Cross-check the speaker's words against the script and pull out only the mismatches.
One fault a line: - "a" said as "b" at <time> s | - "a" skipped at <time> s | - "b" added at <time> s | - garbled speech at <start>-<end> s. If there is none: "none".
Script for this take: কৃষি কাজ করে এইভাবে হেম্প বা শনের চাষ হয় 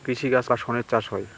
- "করে এইভাবে হেম্প" skipped at 0.5 s